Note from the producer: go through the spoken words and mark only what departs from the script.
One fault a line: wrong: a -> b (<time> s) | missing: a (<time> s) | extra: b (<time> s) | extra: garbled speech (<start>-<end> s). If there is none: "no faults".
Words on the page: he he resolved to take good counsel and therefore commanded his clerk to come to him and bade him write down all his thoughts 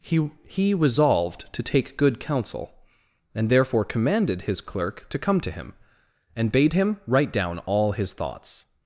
no faults